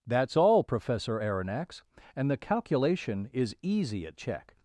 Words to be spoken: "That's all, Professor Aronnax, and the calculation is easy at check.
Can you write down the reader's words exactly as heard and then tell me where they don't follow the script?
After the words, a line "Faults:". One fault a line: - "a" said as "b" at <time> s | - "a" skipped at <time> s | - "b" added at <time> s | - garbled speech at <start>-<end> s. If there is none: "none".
"That's all, Professor Aronnax, and the calculation is easy at check.
Faults:
none